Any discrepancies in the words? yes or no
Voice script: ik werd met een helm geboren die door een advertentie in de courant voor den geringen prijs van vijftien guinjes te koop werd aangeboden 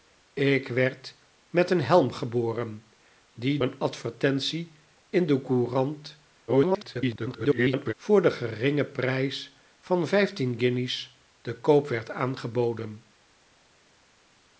yes